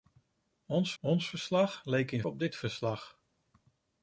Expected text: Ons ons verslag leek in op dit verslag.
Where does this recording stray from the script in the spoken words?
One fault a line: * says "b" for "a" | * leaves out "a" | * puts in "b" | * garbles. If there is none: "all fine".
all fine